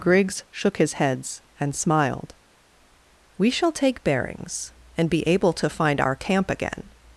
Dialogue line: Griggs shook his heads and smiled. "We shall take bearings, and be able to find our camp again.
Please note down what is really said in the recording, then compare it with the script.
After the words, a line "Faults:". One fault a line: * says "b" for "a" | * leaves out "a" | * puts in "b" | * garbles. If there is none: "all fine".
Griggs shook his heads and smiled. "We shall take bearings, and be able to find our camp again.
Faults:
all fine